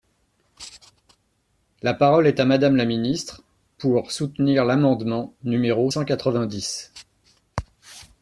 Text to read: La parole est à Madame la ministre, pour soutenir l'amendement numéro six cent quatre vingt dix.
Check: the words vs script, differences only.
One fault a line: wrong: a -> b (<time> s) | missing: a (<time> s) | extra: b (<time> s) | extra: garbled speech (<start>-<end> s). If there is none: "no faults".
missing: six (5.9 s)